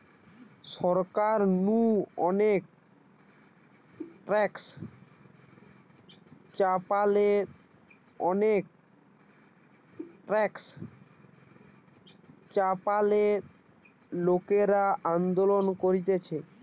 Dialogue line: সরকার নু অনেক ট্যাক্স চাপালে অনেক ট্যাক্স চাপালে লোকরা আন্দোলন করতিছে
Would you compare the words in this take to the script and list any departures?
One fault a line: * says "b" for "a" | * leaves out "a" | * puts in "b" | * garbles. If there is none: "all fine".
all fine